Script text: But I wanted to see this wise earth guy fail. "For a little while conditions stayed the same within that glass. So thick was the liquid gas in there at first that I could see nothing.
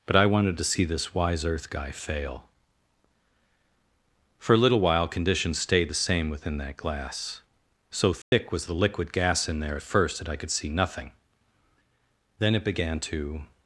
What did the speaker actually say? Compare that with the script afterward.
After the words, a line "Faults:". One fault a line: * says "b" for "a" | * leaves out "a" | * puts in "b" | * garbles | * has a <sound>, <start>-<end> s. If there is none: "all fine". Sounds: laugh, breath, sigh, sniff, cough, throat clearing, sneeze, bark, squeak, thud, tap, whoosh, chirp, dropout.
But I wanted to see this wise earth guy fail. "For a little while conditions stayed the same within that glass. So thick was the liquid gas in there at first that I could see nothing. Then it began to
Faults:
* has a dropout, 8.2-8.3 s
* puts in "Then it began to"